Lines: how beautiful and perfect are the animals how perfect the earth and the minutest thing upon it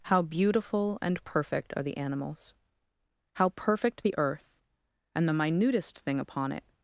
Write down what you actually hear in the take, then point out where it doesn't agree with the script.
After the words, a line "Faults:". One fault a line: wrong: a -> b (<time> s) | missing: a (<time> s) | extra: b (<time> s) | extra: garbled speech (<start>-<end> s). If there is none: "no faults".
how beautiful and perfect are the animals how perfect the earth and the minutest thing upon it
Faults:
no faults